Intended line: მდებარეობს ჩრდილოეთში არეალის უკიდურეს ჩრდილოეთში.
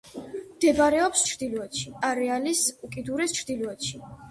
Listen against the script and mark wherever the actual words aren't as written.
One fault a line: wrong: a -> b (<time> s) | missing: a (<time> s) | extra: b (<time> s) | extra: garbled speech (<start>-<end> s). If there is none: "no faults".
no faults